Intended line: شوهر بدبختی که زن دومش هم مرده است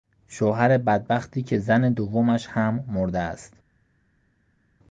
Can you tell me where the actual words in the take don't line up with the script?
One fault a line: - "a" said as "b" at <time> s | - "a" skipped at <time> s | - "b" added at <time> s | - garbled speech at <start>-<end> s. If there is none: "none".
none